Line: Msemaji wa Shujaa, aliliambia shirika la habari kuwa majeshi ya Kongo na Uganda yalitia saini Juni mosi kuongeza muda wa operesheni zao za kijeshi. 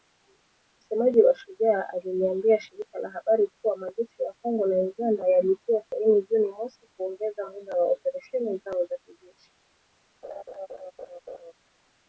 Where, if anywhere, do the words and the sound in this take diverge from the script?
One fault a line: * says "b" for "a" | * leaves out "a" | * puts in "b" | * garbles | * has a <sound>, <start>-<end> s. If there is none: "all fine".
* has a laugh, 10.2-11.5 s